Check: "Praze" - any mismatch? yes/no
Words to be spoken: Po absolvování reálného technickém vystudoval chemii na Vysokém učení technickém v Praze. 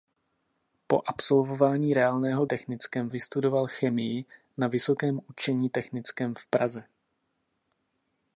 no